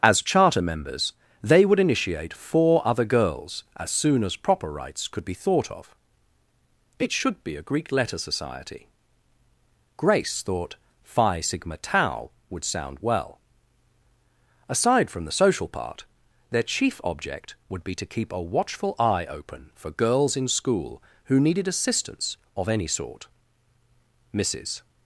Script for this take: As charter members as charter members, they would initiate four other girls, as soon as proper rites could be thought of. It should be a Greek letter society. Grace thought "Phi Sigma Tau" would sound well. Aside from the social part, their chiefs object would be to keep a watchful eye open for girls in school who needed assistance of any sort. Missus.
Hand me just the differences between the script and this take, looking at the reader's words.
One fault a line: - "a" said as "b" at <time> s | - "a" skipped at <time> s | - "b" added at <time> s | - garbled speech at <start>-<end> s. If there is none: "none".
- "as charter members" skipped at 1.1 s
- "chiefs" said as "chief" at 16.6 s